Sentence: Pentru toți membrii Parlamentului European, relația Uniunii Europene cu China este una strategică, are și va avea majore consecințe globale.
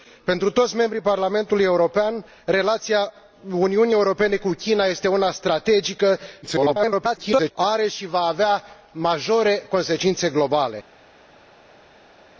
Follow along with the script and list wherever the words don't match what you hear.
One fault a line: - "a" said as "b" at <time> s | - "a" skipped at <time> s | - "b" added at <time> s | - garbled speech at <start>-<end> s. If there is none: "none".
- garbled speech at 6.4-7.5 s